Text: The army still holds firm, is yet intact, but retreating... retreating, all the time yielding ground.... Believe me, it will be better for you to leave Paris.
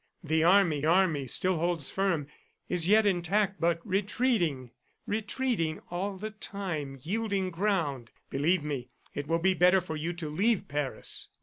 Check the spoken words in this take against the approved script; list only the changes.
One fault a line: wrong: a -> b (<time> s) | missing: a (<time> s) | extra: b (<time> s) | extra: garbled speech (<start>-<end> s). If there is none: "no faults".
extra: army (0.9 s)